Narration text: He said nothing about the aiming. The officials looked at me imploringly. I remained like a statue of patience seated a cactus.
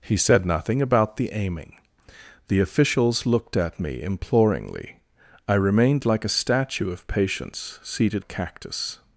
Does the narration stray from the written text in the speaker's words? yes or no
no